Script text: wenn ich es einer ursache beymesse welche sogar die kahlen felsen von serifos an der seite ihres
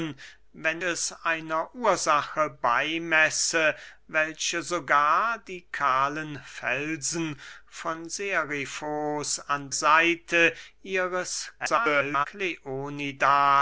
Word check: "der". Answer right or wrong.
wrong